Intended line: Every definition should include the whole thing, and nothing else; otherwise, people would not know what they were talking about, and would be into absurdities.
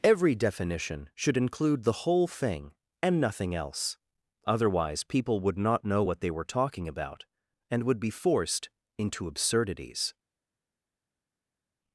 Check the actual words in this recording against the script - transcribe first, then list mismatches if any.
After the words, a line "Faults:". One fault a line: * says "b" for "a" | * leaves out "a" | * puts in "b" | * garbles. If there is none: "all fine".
Every definition should include the whole thing, and nothing else; otherwise, people would not know what they were talking about, and would be forced into absurdities.
Faults:
* puts in "forced"